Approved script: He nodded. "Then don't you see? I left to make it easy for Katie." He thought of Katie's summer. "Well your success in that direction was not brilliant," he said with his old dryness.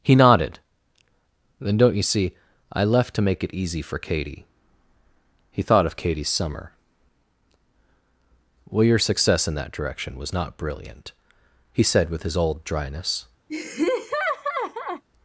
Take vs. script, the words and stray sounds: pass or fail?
fail